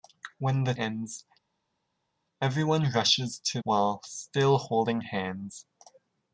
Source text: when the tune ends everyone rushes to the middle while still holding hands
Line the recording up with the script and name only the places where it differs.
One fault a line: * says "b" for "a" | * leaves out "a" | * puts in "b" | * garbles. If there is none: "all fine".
* leaves out "tune"
* leaves out "the middle"